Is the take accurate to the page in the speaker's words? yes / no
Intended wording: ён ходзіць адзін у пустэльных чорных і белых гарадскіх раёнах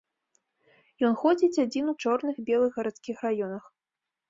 no